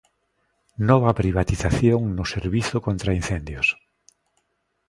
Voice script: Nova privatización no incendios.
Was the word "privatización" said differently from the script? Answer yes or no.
no